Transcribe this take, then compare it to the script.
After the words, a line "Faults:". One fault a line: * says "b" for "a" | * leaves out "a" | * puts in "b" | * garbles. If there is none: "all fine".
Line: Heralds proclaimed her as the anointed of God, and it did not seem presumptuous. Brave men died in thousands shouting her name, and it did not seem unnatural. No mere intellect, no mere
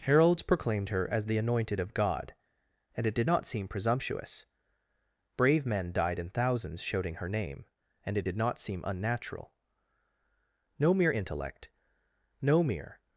Heralds proclaimed her as the anointed of God, and it did not seem presumptuous. Brave men died in thousands shouting her name, and it did not seem unnatural. No mere intellect, no mere
Faults:
all fine